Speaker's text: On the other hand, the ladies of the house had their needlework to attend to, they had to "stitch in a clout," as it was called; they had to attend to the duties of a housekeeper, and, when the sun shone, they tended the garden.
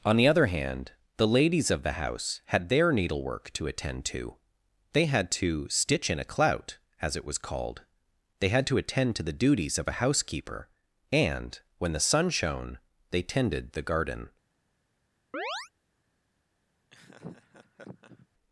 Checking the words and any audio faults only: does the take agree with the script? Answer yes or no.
no